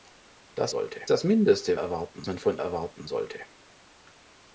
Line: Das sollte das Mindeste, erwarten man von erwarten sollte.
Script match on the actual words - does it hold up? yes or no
yes